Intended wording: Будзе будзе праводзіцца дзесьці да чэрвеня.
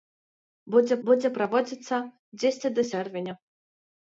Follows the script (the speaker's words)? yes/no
yes